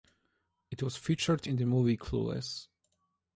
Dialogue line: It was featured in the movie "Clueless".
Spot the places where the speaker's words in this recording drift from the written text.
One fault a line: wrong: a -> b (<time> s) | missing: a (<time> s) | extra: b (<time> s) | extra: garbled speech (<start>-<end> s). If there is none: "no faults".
no faults